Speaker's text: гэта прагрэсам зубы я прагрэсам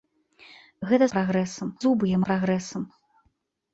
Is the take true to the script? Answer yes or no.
yes